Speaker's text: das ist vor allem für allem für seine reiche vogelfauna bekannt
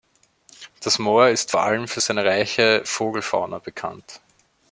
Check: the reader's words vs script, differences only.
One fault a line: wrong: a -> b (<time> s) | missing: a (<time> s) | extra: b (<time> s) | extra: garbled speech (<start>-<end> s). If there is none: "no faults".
extra: moor (1.0 s)
missing: allem für (2.0 s)